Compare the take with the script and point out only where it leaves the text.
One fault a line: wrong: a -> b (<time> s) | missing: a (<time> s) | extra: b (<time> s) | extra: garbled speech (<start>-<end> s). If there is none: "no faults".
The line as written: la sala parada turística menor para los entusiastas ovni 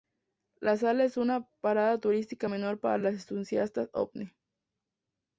extra: es una (1.0 s)